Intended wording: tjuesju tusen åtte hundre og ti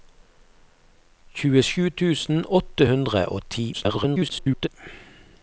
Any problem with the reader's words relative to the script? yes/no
yes